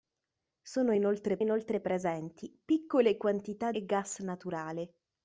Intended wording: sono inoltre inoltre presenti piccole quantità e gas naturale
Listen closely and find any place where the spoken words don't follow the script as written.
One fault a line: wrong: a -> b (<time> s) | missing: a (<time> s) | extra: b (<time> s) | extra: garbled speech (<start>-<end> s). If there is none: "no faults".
no faults